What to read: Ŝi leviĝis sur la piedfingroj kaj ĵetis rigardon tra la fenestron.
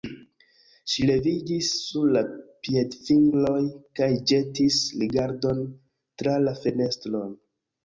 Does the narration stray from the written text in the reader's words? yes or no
no